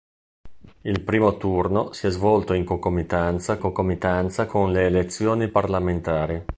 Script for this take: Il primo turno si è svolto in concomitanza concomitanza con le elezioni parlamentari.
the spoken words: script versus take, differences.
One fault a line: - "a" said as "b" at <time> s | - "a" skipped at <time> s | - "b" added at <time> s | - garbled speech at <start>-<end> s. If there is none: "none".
none